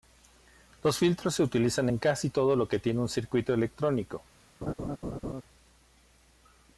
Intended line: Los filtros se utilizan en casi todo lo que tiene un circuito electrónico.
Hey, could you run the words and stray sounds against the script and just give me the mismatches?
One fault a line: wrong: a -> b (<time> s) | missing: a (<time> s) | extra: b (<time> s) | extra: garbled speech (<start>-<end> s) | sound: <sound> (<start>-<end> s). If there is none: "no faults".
sound: laugh (4.6-5.4 s)